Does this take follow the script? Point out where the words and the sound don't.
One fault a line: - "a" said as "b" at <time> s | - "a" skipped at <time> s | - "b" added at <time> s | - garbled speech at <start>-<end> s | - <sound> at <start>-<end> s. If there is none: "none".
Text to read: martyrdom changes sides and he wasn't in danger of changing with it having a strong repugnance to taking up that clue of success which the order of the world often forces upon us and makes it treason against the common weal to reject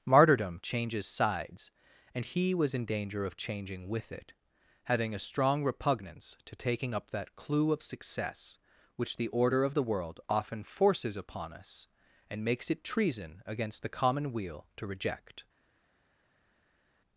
- "wasn't" said as "was" at 2.5 s